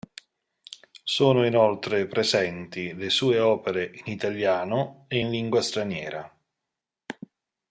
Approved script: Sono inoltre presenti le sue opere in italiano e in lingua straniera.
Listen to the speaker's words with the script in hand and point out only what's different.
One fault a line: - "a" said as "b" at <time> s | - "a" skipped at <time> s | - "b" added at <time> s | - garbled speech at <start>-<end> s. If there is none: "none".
none